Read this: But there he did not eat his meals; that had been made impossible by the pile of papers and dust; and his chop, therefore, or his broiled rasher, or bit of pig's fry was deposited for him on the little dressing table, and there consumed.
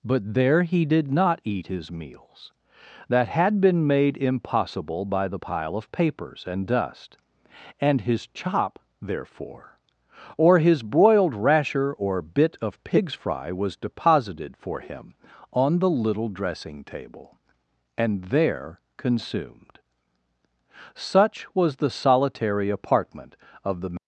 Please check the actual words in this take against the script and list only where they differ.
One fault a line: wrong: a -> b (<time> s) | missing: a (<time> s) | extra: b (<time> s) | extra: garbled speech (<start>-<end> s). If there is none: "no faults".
extra: Such was the solitary apartment of the (20.9 s)